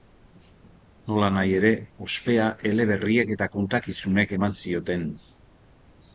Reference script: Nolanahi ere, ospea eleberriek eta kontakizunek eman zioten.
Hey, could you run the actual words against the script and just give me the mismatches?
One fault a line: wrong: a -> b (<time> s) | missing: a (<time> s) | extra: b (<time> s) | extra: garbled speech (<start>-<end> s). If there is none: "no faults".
no faults